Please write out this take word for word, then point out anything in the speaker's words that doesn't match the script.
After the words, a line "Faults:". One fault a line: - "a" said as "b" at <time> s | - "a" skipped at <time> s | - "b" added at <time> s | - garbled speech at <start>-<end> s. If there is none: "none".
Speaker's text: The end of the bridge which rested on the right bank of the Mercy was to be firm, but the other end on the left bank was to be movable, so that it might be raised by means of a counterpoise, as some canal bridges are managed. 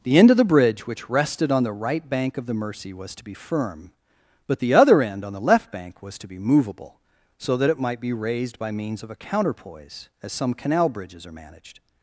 The end of the bridge which rested on the right bank of the Mercy was to be firm, but the other end on the left bank was to be movable, so that it might be raised by means of a counterpoise, as some canal bridges are managed.
Faults:
none